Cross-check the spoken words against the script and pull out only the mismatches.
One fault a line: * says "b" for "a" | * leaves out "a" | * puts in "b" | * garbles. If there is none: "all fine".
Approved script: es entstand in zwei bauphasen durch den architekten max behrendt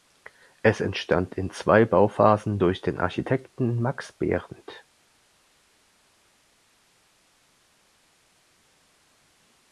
all fine